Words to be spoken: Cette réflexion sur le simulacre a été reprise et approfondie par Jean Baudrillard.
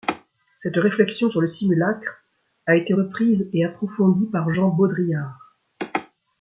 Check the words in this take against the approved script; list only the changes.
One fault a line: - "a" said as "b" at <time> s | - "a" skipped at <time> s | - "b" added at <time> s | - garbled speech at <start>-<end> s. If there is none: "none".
none